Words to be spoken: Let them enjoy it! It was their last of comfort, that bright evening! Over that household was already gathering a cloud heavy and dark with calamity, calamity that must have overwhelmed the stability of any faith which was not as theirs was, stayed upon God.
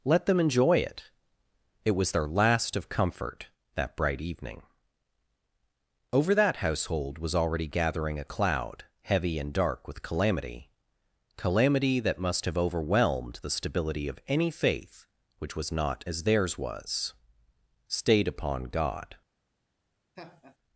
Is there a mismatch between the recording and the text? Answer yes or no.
no